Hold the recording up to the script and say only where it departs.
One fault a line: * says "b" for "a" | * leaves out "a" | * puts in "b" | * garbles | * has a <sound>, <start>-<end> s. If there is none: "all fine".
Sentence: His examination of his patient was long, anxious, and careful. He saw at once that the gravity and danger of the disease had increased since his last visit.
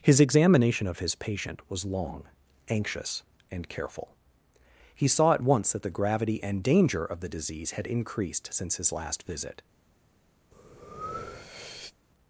* has a breath, 10.5-11.9 s